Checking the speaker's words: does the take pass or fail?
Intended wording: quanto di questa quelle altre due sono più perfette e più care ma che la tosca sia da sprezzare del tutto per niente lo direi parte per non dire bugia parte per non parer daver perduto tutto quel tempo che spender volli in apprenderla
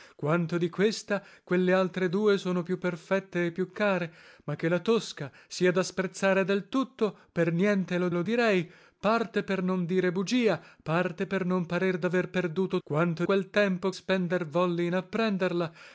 fail